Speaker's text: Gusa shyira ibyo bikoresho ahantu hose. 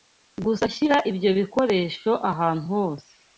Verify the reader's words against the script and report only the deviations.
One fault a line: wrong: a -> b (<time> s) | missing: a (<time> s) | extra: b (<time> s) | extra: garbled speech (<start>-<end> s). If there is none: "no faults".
no faults